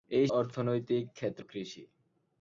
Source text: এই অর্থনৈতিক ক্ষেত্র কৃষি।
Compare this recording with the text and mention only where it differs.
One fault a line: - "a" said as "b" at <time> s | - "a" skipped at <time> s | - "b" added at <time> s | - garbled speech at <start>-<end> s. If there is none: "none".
none